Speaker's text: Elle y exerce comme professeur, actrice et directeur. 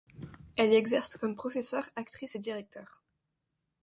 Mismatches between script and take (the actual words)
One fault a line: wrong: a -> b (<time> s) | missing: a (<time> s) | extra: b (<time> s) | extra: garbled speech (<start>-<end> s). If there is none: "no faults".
no faults